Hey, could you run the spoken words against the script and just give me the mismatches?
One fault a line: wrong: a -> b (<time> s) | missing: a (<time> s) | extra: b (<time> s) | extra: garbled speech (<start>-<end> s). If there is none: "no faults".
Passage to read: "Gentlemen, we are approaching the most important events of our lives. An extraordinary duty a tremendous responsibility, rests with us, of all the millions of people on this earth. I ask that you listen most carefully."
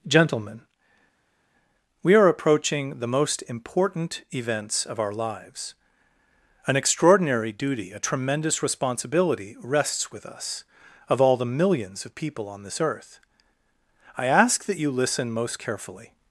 no faults